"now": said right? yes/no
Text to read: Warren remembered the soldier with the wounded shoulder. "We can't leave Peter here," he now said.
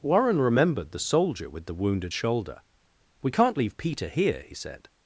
no